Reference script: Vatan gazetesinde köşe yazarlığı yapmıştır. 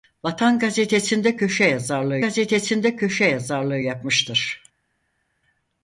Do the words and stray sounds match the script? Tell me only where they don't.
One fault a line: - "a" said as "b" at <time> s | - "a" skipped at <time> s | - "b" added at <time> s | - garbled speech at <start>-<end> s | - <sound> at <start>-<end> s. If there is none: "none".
- "gazetesinde köşe yazarlığı" added at 2.2 s